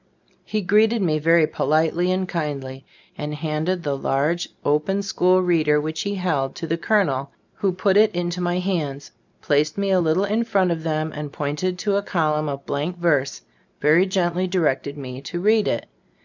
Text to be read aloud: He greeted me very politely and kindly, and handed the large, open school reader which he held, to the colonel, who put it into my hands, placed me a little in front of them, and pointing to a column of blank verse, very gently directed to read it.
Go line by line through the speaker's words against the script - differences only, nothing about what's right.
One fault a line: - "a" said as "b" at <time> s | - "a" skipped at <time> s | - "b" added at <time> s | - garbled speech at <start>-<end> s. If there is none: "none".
- "me" added at 15.0 s